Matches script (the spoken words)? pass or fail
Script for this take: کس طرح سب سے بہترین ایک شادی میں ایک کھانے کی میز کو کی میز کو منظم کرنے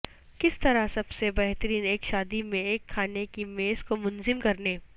fail